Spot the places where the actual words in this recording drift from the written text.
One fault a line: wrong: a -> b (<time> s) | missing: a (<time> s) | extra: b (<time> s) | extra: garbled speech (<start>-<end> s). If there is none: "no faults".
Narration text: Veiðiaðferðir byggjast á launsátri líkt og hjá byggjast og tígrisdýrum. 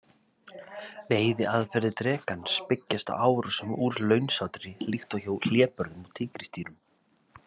extra: drekans (2.0 s)
extra: árásum úr (3.3 s)
wrong: byggjast -> hlébörðum (5.5 s)